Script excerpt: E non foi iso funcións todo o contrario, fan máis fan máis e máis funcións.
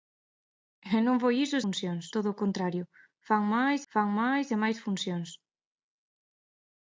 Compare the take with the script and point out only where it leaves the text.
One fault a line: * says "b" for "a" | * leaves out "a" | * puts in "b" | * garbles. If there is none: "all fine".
all fine